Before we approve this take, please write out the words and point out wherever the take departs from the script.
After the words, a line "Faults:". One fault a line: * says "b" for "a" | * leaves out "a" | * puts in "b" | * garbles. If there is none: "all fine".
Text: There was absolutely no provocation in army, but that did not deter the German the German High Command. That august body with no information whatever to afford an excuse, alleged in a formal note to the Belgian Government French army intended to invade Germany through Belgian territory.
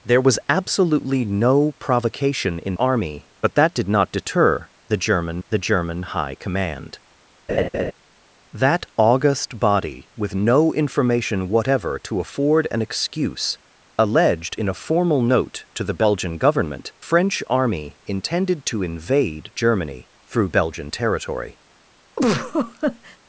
There was absolutely no provocation in army, but that did not deter the German the German High Command. That august body with no information whatever to afford an excuse, alleged in a formal note to the Belgian Government French army intended to invade Germany through Belgian territory.
Faults:
all fine